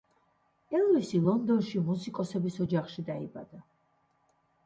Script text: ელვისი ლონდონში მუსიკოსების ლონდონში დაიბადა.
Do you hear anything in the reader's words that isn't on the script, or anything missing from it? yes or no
yes